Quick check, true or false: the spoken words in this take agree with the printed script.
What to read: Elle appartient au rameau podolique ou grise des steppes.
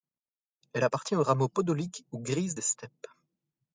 true